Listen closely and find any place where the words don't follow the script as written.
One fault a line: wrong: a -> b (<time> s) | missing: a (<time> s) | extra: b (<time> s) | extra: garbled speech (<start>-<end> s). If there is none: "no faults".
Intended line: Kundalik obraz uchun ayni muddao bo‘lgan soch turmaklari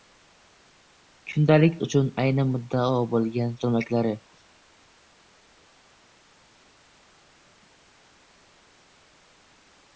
missing: obraz (1.8 s)
missing: soch (3.5 s)